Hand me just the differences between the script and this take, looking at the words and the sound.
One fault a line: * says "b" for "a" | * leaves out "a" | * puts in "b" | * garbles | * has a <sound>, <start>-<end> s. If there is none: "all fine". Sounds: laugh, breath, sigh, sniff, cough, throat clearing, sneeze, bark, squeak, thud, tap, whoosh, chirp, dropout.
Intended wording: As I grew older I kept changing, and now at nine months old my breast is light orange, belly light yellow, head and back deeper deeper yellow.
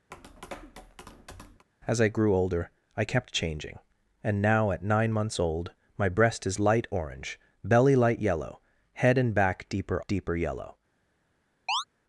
* has a tap, 0.1-1.7 s
* has a chirp, 11.7-11.8 s